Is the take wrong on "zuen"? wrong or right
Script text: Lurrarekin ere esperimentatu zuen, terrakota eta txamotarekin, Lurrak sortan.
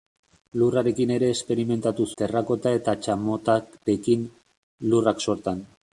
wrong